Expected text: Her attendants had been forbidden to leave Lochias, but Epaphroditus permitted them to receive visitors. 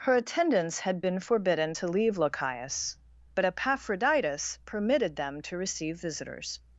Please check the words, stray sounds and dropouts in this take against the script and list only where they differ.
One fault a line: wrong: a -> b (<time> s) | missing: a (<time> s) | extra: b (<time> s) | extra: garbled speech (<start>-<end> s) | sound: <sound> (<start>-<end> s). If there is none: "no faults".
no faults